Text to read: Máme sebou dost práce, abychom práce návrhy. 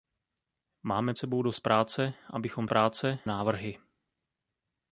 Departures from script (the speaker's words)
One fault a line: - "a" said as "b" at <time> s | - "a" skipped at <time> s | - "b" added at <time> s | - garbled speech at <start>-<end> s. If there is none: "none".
none